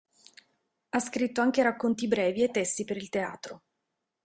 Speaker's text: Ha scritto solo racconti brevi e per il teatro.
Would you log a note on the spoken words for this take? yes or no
yes